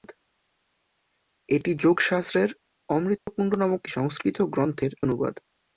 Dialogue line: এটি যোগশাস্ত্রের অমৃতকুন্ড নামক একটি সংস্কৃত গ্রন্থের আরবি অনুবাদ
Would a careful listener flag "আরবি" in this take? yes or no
yes